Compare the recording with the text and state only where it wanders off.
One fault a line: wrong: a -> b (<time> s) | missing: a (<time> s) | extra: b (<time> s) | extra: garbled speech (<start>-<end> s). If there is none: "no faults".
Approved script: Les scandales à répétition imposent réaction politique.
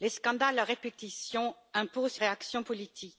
no faults